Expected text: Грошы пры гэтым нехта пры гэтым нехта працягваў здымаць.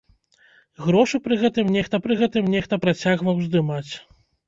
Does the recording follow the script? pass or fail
pass